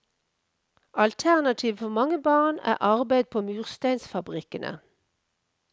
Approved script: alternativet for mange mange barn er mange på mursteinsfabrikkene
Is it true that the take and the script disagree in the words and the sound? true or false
true